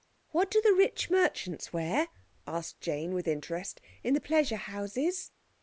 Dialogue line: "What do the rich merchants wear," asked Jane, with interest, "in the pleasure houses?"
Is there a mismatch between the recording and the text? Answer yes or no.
no